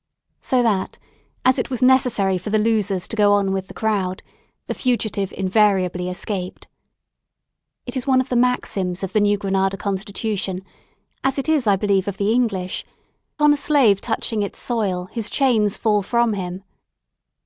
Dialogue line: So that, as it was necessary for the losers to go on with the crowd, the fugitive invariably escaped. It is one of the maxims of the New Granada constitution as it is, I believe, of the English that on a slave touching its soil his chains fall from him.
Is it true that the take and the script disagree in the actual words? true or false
true